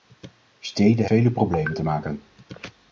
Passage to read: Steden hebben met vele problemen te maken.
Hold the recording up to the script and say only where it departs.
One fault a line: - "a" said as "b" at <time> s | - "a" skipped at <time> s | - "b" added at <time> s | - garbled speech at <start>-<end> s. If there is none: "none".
- "hebben met" skipped at 1.1 s